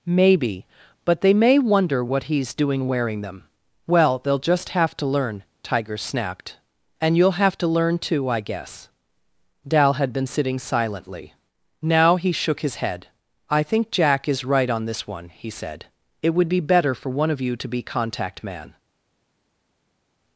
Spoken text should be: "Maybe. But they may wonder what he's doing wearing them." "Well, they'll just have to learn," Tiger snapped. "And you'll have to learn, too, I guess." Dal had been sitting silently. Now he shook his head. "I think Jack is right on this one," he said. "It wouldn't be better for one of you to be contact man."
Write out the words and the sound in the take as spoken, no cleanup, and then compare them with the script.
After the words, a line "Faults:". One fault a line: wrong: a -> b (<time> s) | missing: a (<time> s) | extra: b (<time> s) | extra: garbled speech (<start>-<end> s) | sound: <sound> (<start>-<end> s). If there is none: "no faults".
"Maybe. But they may wonder what he's doing wearing them." "Well, they'll just have to learn," Tiger snapped. "And you'll have to learn, too, I guess." Dal had been sitting silently. Now he shook his head. "I think Jack is right on this one," he said. "It would be better for one of you to be contact man."
Faults:
wrong: wouldn't -> would (16.3 s)